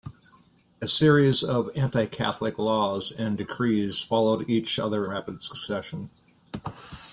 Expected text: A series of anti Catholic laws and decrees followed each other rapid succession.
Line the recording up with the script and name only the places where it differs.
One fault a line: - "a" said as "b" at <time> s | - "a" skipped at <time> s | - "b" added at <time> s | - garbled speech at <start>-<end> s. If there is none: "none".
none